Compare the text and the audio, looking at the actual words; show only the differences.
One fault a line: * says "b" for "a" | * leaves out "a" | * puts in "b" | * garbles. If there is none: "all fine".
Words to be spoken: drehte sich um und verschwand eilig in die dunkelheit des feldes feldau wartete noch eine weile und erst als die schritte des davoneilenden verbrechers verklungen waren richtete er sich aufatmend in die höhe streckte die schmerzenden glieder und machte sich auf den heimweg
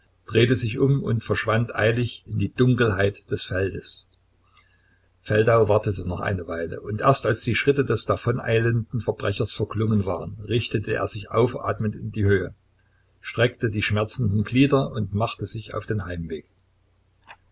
all fine